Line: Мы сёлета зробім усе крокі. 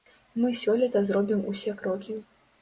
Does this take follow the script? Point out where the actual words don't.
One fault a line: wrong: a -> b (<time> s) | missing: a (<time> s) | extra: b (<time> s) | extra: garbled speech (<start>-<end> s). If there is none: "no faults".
no faults